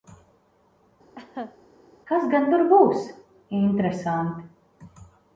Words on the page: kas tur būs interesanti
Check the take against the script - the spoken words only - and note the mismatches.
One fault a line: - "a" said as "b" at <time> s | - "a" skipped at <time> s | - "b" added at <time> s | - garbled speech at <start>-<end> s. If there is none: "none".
- "gan" added at 2.4 s